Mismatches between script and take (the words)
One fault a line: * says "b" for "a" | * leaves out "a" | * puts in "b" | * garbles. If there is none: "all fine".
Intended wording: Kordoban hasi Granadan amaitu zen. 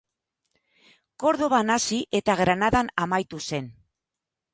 * puts in "eta"